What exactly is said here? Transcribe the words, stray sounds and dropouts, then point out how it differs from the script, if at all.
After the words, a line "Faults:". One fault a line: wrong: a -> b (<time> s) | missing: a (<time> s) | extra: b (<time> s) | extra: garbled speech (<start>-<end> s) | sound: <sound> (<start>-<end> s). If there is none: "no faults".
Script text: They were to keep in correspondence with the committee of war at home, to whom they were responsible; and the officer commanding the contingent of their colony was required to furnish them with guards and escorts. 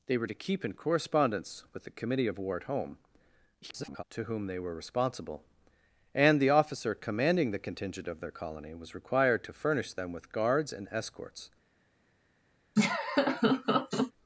They were to keep in correspondence with the committee of war at home, [garbled] to whom they were responsible; and the officer commanding the contingent of their colony was required to furnish them with guards and escorts.
Faults:
extra: garbled speech (3.6-4.0 s)
sound: laugh (12.8-14.1 s)